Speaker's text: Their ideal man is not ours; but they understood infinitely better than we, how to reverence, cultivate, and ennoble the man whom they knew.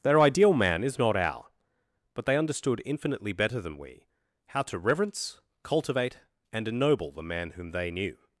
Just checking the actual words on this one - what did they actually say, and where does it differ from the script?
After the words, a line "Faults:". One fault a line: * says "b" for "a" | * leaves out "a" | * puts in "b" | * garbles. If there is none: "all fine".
Their ideal man is not our; but they understood infinitely better than we, how to reverence, cultivate, and ennoble the man whom they knew.
Faults:
* says "our" for "ours"